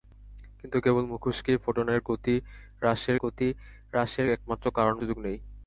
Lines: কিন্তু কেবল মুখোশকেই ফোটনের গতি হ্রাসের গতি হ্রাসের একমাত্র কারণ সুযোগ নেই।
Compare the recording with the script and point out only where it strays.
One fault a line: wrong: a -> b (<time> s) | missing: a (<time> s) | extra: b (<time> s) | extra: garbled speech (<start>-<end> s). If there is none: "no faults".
no faults